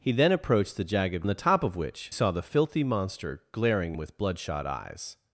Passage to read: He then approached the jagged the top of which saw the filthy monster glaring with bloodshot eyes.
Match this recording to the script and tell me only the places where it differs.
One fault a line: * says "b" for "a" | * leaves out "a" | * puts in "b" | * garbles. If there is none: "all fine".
all fine